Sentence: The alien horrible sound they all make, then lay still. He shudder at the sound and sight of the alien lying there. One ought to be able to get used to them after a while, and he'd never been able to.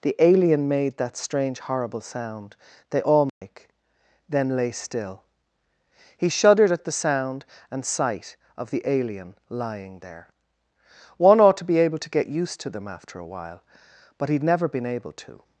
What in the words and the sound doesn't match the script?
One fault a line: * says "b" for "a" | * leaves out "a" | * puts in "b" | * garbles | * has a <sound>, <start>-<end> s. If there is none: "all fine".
* puts in "made that strange"
* has a dropout, 3.3-3.4 s
* says "shuddered" for "shudder"
* says "but" for "and"